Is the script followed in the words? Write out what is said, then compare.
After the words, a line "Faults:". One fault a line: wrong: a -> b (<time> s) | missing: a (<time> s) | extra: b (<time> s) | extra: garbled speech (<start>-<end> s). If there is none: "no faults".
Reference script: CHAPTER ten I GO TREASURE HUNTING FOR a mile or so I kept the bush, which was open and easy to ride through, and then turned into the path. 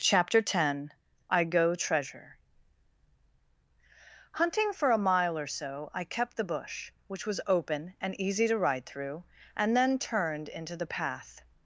CHAPTER ten I GO TREASURE HUNTING FOR a mile or so I kept the bush, which was open and easy to ride through, and then turned into the path.
Faults:
no faults